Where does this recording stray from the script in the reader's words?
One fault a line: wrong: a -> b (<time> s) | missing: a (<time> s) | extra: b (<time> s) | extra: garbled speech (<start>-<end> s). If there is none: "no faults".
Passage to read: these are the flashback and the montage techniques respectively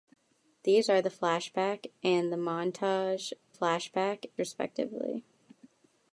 wrong: techniques -> flashback (3.5 s)